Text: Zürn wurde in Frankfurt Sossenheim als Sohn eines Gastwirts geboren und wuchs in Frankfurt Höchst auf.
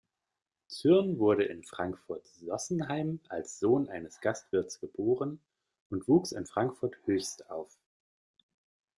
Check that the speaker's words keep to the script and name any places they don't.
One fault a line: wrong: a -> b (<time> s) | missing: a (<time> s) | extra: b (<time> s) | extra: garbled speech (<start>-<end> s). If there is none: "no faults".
no faults